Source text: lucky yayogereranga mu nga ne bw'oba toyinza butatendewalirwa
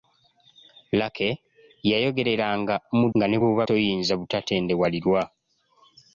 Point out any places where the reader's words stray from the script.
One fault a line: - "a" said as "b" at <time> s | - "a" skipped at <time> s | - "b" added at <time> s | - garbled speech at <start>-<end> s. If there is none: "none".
none